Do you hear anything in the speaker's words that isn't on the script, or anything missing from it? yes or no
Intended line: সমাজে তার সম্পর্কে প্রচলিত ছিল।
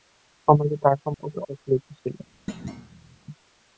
no